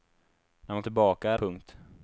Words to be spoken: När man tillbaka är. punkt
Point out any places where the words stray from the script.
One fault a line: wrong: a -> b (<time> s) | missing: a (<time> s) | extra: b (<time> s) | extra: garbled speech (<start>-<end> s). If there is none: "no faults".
no faults